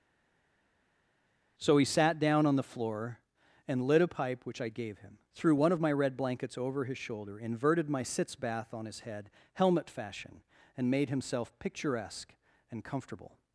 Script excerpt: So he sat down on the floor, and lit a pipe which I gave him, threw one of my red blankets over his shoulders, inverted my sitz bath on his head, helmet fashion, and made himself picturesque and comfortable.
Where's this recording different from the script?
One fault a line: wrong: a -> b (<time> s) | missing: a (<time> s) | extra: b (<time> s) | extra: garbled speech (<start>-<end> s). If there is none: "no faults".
wrong: shoulders -> shoulder (7.0 s)